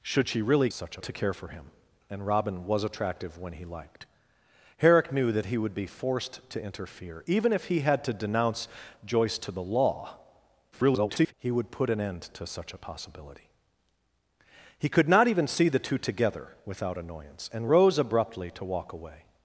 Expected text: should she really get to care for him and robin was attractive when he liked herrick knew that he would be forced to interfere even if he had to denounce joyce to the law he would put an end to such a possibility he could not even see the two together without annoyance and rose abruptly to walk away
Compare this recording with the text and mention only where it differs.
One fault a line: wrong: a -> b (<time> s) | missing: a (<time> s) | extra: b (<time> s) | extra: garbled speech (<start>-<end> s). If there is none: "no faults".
wrong: get -> such (0.7 s)
extra: garbled speech (10.7-11.3 s)